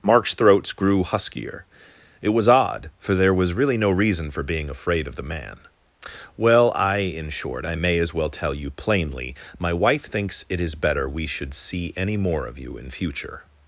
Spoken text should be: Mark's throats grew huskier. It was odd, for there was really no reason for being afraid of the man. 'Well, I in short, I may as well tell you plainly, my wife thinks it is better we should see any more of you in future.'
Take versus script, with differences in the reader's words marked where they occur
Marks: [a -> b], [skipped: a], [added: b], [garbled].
Mark's throats grew huskier. It was odd, for there was really no reason for being afraid of the man. 'Well, I in short, I may as well tell you plainly, my wife thinks it is better we should see any more of you in future.'